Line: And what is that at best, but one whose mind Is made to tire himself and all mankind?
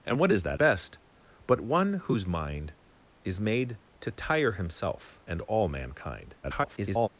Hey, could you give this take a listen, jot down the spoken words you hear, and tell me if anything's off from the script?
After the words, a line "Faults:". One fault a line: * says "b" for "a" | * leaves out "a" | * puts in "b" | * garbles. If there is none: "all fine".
And what is that best, but one whose mind Is made to tire himself and all mankind? [garbled]
Faults:
* leaves out "at"
* garbles